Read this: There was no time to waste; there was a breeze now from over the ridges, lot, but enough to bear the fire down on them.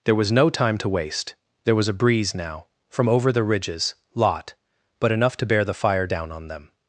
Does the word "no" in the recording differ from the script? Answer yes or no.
no